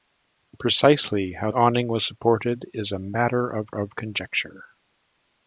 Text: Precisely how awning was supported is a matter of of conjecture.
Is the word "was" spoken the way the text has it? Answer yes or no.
yes